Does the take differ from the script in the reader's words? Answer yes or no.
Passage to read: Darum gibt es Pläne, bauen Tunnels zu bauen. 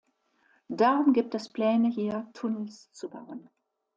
yes